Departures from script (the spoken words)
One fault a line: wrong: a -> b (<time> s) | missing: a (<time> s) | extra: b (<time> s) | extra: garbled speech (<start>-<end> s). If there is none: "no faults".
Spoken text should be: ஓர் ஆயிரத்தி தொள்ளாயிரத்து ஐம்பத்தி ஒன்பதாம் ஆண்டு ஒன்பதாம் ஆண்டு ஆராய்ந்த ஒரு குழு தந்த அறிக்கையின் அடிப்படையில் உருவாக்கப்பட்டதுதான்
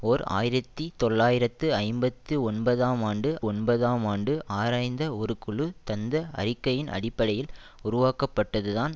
no faults